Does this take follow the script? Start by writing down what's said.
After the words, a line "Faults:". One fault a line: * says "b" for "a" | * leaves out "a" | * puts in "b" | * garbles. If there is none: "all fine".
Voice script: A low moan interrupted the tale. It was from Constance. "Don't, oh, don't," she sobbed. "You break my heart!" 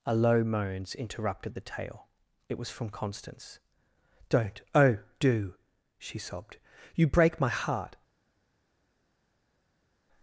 A low moans interrupted the tale. It was from Constance. "Don't, oh, do," she sobbed. "You break my heart!"
Faults:
* says "moans" for "moan"
* says "do" for "don't"